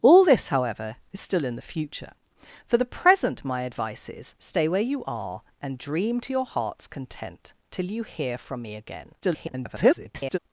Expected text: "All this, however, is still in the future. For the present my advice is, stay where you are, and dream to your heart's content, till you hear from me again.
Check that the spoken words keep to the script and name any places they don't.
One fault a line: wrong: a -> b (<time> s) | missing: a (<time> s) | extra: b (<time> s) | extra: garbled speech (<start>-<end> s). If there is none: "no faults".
extra: garbled speech (9.2-10.4 s)